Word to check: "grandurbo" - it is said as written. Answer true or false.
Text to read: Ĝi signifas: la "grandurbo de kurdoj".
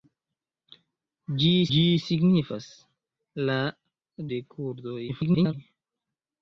false